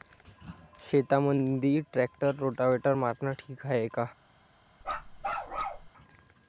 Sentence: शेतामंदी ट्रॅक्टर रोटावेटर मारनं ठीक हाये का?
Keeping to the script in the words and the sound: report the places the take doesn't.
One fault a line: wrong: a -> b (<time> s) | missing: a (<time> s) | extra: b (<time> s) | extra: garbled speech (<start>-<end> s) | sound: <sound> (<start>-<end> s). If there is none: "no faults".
sound: bark (4.8-5.9 s)